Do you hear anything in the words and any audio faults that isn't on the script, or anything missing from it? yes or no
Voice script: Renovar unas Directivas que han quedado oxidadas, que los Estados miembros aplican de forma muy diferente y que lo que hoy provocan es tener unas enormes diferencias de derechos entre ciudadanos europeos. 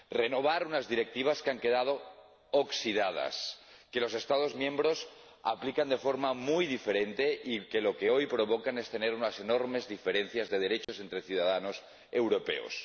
yes